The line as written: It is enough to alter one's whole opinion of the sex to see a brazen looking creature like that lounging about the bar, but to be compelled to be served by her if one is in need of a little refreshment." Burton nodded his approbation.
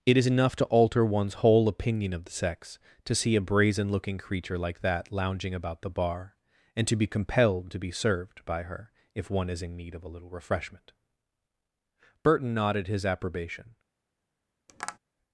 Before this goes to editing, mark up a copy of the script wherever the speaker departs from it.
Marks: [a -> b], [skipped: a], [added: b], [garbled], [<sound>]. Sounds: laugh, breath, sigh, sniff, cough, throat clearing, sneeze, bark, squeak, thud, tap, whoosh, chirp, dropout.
It is enough to alter one's whole opinion of the sex to see a brazen looking creature like that lounging about the bar, [but -> and] to be compelled to be served by her if one is in need of a little refreshment." Burton nodded his approbation. [tap]